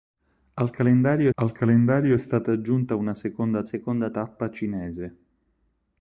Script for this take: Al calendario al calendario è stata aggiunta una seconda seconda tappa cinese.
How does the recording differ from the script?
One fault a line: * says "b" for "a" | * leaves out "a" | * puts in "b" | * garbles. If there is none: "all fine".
all fine